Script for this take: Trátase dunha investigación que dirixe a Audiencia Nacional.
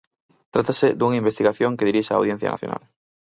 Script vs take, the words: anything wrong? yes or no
no